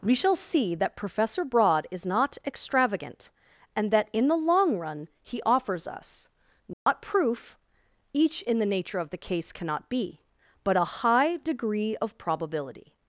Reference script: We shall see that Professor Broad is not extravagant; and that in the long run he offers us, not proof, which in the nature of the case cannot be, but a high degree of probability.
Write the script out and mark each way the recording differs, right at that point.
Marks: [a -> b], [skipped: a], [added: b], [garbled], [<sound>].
We shall see that Professor Broad is not extravagant; and that in the long run he offers us, not [dropout] proof, [which -> each] in the nature of the case cannot be, but a high degree of probability.